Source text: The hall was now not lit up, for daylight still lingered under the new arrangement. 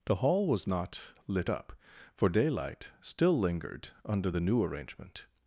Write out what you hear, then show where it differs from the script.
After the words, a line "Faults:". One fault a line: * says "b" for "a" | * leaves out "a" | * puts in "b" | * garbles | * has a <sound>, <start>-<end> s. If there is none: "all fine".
The hall was not lit up, for daylight still lingered under the new arrangement.
Faults:
* leaves out "now"